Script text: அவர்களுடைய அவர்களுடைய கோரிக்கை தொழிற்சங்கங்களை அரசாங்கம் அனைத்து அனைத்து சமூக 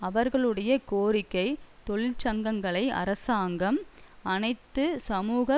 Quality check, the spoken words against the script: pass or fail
fail